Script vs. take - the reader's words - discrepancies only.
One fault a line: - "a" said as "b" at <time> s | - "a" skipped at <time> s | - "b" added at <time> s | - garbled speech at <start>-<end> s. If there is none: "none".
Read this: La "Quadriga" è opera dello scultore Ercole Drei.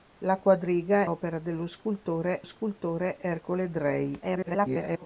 - "è" skipped at 1.1 s
- "scultore" added at 2.4 s
- garbled speech at 4.2-5.1 s